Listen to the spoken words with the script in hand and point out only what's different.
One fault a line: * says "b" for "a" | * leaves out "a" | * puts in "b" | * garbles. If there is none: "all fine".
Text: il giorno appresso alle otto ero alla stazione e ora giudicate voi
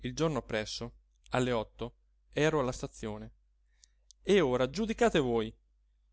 all fine